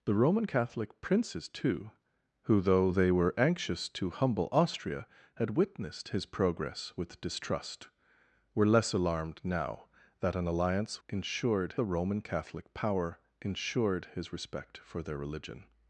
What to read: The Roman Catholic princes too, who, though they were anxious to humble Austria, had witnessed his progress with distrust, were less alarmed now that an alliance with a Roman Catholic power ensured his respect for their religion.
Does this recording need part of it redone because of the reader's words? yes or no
yes